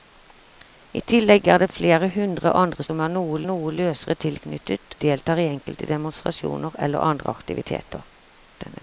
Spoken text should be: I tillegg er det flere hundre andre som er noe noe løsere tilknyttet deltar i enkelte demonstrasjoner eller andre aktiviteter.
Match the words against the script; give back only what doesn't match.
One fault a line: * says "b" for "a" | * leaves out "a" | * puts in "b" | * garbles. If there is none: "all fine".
all fine